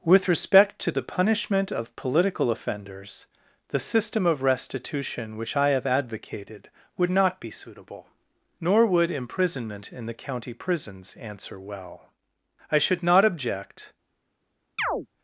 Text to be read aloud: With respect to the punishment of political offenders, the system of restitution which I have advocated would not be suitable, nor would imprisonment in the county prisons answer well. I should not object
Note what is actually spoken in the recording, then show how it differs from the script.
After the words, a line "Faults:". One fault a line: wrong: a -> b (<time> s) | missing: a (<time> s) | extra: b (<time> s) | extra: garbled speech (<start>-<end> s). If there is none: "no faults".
With respect to the punishment of political offenders, the system of restitution which I have advocated would not be suitable, nor would imprisonment in the county prisons answer well. I should not object
Faults:
no faults